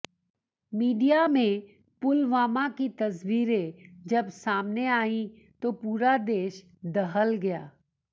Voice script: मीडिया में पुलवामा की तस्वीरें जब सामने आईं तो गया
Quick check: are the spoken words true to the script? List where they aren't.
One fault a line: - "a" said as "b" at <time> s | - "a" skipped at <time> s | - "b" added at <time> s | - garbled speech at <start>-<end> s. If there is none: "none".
- "पूरा देश दहल" added at 5.8 s